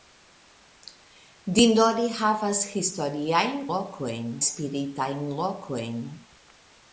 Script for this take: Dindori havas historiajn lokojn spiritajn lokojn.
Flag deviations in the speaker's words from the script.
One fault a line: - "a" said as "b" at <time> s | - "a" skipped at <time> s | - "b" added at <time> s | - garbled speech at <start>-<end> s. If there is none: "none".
none